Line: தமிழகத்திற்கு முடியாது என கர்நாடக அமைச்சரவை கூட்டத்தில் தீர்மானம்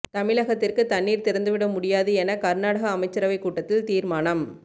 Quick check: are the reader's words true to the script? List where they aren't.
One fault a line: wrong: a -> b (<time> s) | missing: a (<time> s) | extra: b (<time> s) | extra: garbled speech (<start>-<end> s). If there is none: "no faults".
extra: தண்ணீர் திறந்துவிட (0.8 s)